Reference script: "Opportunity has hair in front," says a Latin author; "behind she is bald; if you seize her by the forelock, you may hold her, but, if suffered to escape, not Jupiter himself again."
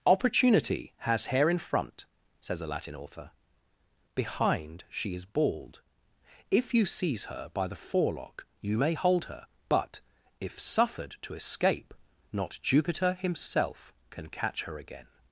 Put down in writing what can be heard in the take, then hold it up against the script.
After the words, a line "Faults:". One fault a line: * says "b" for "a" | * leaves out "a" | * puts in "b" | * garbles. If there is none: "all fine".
"Opportunity has hair in front," says a Latin author; "behind she is bald; if you seize her by the forelock, you may hold her, but, if suffered to escape, not Jupiter himself can catch her again."
Faults:
* puts in "can catch her"